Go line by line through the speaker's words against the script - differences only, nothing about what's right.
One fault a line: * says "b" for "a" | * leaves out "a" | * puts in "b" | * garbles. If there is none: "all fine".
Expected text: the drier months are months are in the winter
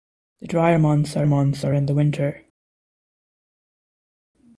all fine